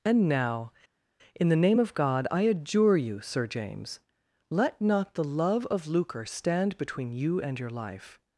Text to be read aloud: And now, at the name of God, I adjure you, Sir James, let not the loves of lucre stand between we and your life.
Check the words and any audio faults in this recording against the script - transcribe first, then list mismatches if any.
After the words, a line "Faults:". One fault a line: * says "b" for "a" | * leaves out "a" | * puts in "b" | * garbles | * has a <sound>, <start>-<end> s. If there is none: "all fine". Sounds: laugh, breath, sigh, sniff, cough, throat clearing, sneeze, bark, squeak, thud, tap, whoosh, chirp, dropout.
And now, in the name of God, I adjure you, Sir James, let not the love of lucre stand between you and your life.
Faults:
* says "in" for "at"
* says "love" for "loves"
* says "you" for "we"